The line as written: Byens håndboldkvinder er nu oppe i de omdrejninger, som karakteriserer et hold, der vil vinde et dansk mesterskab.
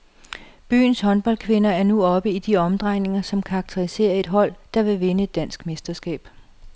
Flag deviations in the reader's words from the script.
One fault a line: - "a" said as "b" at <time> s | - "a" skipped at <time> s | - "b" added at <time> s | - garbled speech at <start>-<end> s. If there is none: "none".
none